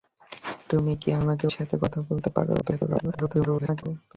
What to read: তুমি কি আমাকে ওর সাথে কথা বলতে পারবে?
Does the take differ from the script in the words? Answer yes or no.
yes